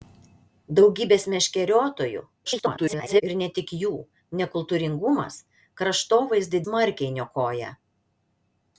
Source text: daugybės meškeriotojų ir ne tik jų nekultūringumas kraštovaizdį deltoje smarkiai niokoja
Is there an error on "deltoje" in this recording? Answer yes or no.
yes